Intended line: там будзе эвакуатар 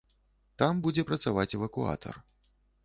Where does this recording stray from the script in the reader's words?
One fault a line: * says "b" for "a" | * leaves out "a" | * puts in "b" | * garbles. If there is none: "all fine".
* puts in "працаваць"